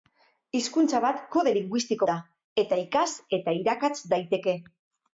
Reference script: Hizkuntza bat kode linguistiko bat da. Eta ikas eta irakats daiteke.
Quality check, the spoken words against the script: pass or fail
fail